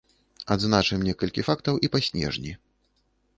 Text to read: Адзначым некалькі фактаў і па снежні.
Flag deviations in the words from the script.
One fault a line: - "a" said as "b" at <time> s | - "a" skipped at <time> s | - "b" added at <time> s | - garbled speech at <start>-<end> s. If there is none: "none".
none